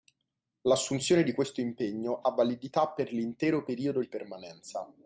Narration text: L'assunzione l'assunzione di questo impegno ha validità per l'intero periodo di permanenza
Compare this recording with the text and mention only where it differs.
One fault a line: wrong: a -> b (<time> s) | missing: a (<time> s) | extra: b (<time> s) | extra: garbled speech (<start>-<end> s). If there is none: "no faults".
missing: l'assunzione (1.2 s)